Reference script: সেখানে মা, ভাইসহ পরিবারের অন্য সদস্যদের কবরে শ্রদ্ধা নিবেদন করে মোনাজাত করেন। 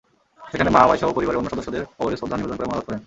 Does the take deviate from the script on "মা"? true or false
false